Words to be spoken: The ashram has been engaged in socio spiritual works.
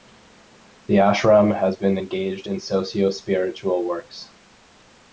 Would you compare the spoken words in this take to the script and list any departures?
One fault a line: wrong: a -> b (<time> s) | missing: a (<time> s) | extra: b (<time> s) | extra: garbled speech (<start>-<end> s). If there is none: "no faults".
no faults